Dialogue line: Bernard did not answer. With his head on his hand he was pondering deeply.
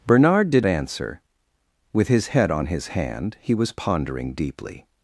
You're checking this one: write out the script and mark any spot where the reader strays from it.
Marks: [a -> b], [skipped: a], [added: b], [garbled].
Bernard did [skipped: not] answer. With his head on his hand he was pondering deeply.